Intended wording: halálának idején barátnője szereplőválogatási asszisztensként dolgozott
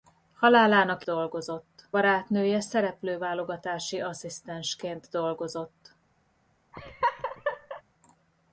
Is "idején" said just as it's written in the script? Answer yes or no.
no